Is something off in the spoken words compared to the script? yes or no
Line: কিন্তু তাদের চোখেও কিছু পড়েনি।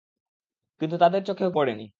yes